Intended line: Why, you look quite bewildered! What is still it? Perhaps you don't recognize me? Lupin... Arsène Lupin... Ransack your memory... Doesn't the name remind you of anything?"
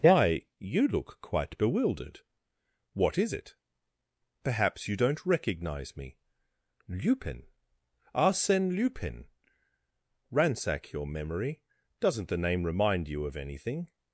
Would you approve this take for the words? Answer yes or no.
no